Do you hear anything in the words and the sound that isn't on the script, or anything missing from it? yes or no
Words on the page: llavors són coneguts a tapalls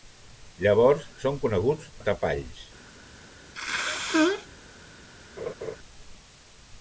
yes